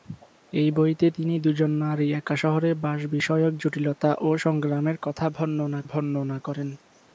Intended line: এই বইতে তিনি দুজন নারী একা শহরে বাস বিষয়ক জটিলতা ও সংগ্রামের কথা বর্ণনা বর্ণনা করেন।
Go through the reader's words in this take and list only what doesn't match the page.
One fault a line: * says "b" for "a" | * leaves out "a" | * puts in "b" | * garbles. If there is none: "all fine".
all fine